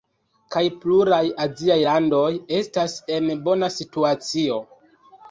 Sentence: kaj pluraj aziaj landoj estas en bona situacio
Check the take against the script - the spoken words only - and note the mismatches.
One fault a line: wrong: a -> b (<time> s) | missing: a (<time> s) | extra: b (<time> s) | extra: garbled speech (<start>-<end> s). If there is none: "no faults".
no faults